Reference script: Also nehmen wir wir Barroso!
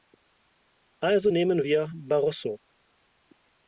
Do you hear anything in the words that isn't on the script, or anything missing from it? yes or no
yes